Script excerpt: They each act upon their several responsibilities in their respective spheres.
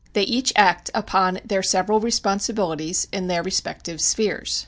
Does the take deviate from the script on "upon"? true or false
false